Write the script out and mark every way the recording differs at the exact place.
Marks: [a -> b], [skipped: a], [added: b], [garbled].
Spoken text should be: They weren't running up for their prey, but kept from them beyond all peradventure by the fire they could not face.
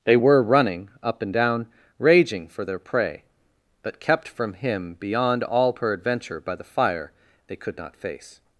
They [weren't -> were] running up [added: and down raging] for their prey, but kept from [them -> him] beyond all peradventure by the fire they could not face.